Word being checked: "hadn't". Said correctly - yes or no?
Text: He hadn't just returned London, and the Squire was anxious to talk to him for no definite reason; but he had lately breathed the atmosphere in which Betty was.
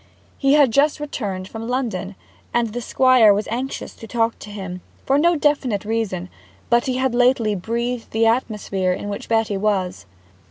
no